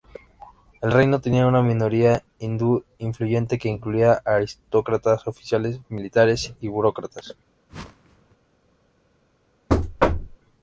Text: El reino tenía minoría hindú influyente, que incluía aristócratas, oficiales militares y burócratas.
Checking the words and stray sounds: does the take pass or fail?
fail